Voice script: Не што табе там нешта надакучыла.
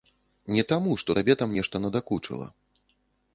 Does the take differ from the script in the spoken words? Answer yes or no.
yes